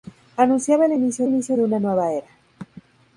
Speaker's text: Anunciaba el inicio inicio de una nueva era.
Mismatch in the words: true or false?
false